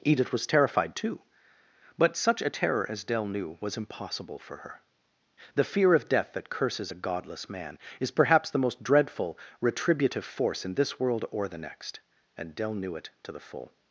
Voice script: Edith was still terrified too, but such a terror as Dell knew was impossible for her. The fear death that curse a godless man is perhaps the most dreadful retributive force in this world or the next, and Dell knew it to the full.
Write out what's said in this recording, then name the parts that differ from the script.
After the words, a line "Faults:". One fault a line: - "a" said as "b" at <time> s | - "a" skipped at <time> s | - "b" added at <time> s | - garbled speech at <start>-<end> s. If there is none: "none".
Edith was terrified too, but such a terror as Dell knew was impossible for her. The fear of death that curses a godless man is perhaps the most dreadful retributive force in this world or the next, and Dell knew it to the full.
Faults:
- "still" skipped at 0.5 s
- "of" added at 5.9 s
- "curse" said as "curses" at 6.5 s